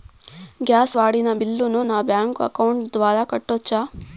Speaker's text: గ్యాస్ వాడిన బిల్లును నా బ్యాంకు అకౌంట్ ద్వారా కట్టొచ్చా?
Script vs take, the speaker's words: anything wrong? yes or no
no